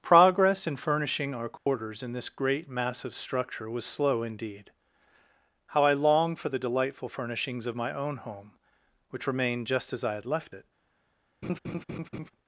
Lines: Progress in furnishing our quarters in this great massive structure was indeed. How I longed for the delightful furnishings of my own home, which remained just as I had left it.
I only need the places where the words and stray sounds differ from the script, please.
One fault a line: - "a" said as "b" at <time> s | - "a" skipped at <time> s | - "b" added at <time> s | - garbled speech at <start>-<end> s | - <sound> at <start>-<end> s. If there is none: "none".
- dropout at 1.6-1.7 s
- "slow" added at 3.9 s
- laugh at 11.4-12.3 s